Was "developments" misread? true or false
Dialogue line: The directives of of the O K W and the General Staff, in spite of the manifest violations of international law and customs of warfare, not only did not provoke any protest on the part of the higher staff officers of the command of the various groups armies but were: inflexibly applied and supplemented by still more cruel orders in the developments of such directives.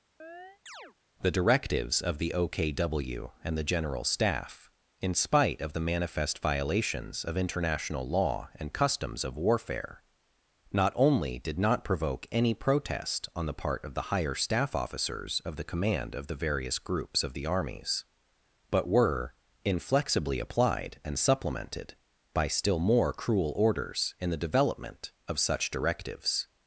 true